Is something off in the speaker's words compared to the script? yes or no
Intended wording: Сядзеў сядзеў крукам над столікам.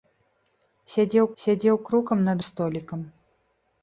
no